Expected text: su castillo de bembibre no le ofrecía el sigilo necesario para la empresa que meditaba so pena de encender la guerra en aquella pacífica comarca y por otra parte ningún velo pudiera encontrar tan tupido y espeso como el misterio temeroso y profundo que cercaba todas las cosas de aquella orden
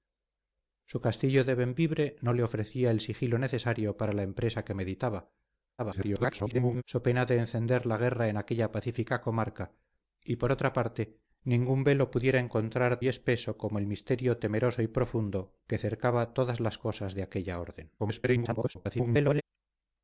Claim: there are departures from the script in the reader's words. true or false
true